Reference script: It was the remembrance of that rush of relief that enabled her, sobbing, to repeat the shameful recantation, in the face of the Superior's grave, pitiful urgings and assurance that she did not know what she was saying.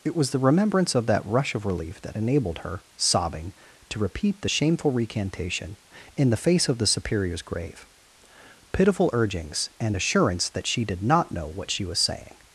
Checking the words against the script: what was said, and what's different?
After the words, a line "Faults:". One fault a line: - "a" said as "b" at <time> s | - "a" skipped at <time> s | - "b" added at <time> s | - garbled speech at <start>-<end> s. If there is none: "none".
It was the remembrance of that rush of relief that enabled her, sobbing, to repeat the shameful recantation, in the face of the Superior's grave, pitiful urgings and assurance that she did not know what she was saying.
Faults:
none